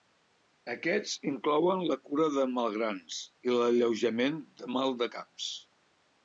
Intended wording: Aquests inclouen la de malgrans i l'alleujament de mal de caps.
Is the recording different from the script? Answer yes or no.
yes